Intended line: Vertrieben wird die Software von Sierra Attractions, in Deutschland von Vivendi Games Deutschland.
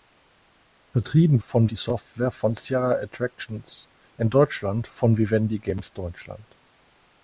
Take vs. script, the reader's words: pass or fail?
fail